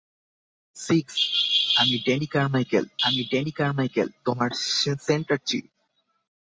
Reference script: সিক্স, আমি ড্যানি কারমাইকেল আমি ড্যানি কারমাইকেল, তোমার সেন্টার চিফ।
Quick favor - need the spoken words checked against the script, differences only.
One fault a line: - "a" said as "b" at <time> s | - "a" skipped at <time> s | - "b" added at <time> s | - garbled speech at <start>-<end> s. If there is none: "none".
none